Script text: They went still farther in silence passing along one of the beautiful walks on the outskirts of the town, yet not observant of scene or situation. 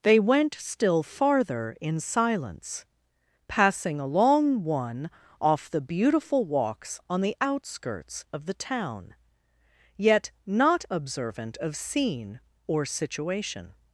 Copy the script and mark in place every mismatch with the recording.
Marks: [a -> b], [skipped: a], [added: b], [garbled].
They went still farther in silence passing along one [of -> off] the beautiful walks on the outskirts of the town, yet not observant of scene or situation.